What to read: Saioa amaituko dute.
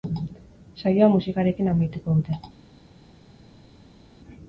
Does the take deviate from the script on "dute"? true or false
false